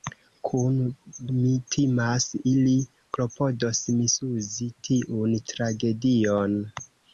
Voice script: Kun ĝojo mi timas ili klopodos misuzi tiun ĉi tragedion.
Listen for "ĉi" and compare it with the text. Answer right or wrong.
wrong